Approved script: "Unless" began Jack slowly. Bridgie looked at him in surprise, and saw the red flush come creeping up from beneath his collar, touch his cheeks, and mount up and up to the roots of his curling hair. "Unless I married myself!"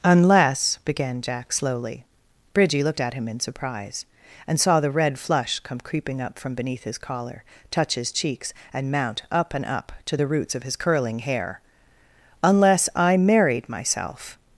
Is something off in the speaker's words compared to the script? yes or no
no